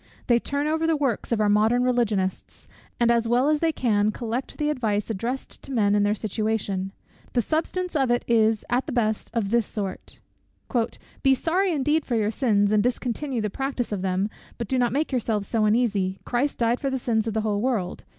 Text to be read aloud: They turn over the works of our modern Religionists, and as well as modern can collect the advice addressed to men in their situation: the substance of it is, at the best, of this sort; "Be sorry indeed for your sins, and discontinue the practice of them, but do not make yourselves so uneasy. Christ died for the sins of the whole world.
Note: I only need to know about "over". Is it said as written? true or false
true